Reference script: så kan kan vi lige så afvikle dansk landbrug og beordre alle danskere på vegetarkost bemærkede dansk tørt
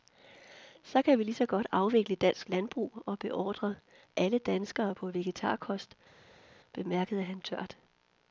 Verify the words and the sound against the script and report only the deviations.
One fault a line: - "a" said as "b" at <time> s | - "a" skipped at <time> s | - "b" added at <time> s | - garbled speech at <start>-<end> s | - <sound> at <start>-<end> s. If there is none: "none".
- "kan" skipped at 1.2 s
- "godt" added at 1.4 s
- "dansk" said as "han" at 7.2 s